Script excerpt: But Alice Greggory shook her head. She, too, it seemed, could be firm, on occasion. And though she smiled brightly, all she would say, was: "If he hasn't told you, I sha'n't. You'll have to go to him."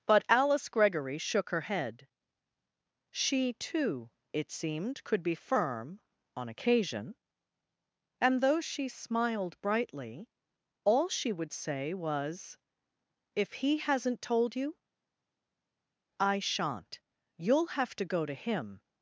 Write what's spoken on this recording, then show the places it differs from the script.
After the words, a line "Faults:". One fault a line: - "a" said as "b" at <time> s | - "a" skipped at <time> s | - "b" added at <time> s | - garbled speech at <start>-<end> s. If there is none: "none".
But Alice Greggory shook her head. She, too, it seemed, could be firm, on occasion. And though she smiled brightly, all she would say, was: "If he hasn't told you, I sha'n't. You'll have to go to him."
Faults:
none